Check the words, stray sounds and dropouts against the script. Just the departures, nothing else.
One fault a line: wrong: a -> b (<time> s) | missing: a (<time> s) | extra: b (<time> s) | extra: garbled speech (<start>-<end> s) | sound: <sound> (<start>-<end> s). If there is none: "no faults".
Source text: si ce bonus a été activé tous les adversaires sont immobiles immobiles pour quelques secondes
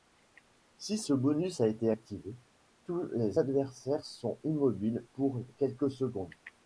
missing: immobiles (5.1 s)